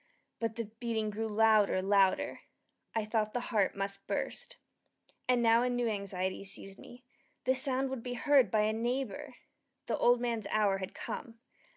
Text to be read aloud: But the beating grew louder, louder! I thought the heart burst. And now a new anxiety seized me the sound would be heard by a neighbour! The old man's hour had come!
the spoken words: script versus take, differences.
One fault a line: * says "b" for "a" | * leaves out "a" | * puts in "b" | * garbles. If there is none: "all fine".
* puts in "must"